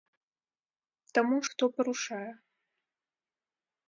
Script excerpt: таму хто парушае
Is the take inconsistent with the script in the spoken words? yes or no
no